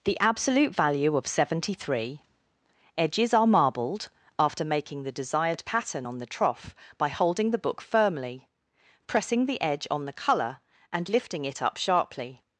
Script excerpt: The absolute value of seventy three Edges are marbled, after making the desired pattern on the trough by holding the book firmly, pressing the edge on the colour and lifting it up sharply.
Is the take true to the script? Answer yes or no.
yes